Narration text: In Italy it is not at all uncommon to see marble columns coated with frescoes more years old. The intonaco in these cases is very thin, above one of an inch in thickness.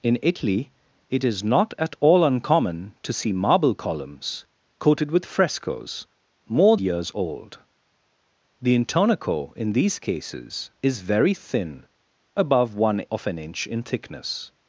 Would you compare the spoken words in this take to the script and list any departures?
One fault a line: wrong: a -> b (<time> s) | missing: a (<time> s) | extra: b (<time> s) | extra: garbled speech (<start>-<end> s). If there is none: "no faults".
no faults